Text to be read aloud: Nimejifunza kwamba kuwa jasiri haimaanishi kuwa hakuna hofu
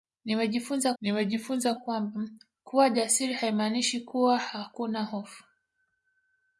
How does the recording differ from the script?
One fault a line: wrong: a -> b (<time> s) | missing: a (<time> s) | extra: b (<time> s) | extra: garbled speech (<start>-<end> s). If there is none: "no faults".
extra: nimejifunza (1.0 s)